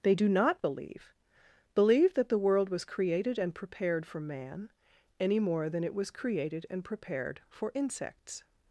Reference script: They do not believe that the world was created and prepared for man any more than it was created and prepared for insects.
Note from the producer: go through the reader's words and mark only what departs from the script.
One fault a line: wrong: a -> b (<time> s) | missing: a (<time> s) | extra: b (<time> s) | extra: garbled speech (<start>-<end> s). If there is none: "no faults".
extra: believe (1.7 s)